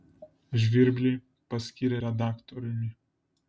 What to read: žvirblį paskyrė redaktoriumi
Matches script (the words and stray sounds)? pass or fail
pass